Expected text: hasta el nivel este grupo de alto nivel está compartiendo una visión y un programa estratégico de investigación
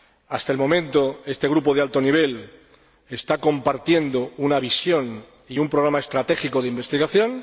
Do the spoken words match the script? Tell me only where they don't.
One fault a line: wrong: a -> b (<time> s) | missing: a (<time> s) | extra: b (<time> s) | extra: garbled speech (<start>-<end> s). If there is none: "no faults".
wrong: nivel -> momento (0.6 s)